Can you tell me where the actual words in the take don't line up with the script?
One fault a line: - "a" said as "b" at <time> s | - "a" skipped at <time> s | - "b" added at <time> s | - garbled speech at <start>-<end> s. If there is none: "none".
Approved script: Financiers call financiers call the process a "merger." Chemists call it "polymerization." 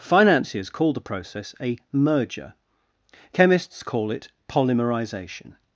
- "financiers call" skipped at 0.9 s